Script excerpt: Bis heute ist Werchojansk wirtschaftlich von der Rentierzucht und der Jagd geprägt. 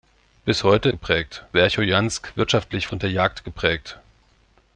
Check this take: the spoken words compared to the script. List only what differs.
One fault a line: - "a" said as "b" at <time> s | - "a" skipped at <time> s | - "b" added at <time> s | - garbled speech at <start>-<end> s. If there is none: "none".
- "ist" said as "geprägt" at 0.9 s
- "von der Rentierzucht" skipped at 2.9 s